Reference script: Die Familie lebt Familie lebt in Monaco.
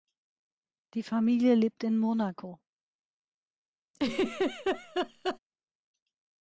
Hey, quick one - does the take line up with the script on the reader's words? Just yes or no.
no